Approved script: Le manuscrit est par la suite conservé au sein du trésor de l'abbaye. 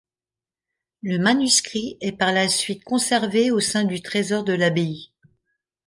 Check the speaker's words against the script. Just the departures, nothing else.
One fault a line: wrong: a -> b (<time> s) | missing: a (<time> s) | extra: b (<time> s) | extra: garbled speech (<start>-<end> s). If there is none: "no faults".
no faults